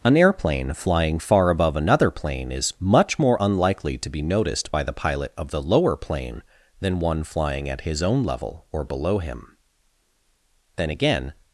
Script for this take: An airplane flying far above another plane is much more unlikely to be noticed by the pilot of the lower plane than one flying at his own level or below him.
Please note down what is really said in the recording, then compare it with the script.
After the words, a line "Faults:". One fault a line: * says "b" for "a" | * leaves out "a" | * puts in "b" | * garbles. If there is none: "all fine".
An airplane flying far above another plane is much more unlikely to be noticed by the pilot of the lower plane than one flying at his own level or below him. Then again
Faults:
* puts in "Then again"